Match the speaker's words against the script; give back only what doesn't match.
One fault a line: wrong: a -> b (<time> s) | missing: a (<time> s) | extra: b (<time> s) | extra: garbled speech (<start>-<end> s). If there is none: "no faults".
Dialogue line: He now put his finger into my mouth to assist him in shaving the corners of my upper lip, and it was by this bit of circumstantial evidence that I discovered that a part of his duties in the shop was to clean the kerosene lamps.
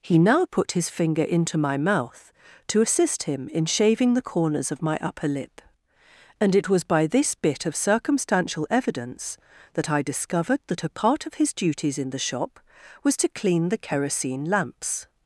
no faults